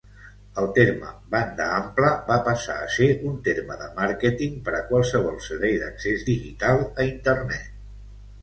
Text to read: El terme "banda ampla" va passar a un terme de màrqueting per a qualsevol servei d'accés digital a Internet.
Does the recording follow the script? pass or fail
fail